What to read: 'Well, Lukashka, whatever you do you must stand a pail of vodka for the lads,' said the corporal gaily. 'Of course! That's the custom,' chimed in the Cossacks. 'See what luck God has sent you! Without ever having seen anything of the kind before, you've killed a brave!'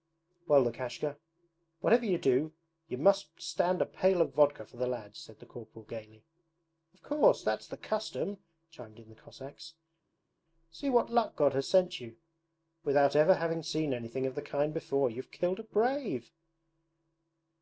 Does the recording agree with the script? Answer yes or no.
yes